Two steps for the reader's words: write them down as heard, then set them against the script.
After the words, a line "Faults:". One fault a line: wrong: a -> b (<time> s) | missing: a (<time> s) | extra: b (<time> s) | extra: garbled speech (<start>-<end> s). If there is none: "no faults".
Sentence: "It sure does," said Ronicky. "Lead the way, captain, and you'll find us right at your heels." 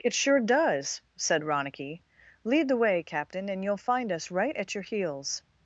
"It sure does," said Ronicky. "Lead the way, captain, and you'll find us right at your heels."
Faults:
no faults